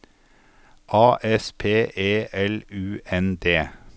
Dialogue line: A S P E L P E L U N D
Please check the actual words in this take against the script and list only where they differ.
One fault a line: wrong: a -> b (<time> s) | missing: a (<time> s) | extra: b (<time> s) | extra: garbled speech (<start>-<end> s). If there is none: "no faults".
missing: P E L (2.6 s)